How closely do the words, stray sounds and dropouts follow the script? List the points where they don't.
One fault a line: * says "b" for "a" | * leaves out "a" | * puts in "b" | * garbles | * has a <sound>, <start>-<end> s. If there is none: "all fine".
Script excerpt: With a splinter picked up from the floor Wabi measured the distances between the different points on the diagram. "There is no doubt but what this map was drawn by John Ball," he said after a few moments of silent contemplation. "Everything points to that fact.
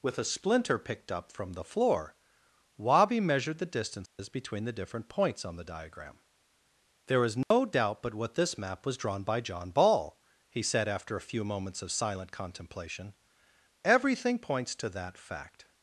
* has a dropout, 4.1-4.2 s
* has a dropout, 7.4-7.5 s